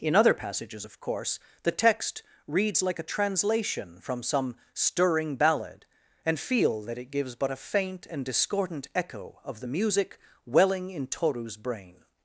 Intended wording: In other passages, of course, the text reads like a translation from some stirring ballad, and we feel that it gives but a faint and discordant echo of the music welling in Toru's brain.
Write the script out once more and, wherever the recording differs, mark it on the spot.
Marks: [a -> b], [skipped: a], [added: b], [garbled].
In other passages, of course, the text reads like a translation from some stirring ballad, and [skipped: we] feel that it gives but a faint and discordant echo of the music welling in Toru's brain.